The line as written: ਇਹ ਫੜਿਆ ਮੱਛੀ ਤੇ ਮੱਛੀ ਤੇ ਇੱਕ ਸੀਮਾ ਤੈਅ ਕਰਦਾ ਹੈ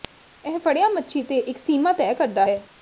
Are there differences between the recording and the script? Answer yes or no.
yes